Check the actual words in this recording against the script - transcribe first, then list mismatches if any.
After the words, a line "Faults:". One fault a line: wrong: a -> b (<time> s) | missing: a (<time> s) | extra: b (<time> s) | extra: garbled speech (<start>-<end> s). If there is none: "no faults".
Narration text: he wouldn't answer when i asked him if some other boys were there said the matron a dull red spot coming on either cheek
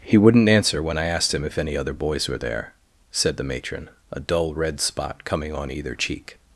he wouldn't answer when i asked him if any other boys were there said the matron a dull red spot coming on either cheek
Faults:
wrong: some -> any (1.6 s)